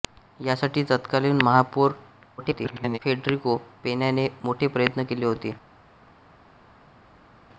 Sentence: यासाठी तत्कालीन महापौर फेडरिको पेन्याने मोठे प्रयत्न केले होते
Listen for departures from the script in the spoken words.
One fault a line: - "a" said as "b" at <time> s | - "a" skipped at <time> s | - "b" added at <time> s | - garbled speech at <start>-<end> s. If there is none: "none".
- garbled speech at 2.4-3.0 s